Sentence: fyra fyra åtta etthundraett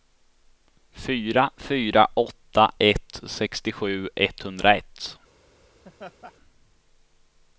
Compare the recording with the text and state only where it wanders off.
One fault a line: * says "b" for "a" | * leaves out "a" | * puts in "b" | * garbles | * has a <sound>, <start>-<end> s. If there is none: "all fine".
* puts in "ett sextiosju"
* has a laugh, 5.8-6.3 s